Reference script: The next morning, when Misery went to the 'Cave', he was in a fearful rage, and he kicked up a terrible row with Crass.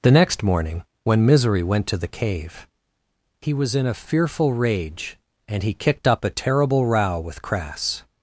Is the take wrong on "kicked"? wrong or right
right